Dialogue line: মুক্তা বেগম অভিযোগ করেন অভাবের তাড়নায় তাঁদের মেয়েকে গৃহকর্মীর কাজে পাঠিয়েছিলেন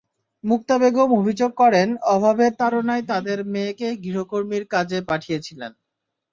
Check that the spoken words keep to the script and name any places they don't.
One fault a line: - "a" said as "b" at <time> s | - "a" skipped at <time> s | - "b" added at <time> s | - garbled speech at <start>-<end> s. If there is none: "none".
none